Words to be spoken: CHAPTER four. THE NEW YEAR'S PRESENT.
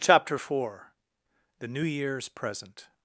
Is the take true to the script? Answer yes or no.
yes